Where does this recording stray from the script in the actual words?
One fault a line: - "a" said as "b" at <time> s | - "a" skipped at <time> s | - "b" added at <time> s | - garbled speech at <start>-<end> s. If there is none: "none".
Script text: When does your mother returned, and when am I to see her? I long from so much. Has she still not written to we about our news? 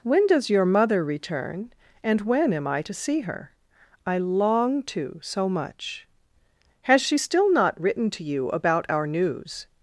- "returned" said as "return" at 1.0 s
- "from" said as "to" at 4.8 s
- "we" said as "you" at 8.2 s